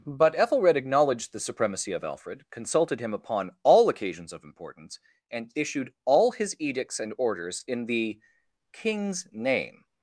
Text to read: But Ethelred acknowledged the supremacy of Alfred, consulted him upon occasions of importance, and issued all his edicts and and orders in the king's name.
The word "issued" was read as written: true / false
true